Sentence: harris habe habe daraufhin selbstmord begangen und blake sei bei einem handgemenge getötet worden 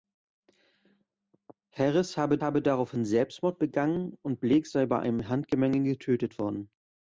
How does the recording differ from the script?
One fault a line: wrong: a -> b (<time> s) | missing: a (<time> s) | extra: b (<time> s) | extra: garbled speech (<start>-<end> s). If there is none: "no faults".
no faults